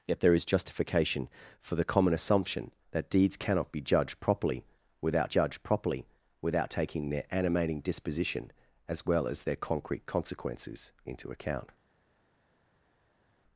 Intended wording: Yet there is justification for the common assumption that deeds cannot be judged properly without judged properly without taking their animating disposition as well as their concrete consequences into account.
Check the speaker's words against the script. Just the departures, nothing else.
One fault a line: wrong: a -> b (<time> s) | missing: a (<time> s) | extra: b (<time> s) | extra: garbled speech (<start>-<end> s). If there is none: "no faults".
no faults